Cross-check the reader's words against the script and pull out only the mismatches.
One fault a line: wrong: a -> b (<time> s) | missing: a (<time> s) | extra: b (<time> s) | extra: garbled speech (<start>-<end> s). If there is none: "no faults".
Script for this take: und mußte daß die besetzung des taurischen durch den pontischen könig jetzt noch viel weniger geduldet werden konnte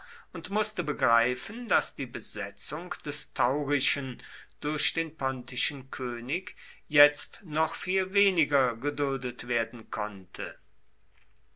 extra: begreifen (0.8 s)